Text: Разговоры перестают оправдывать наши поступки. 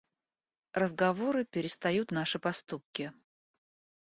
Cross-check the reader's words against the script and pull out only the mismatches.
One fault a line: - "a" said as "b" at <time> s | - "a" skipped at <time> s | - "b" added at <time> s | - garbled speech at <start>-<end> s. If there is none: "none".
- "оправдывать" skipped at 2.1 s